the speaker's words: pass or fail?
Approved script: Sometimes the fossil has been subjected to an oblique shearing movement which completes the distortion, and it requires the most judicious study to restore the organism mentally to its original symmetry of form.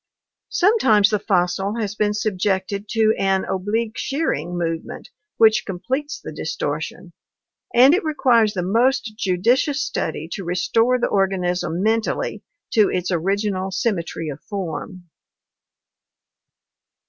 pass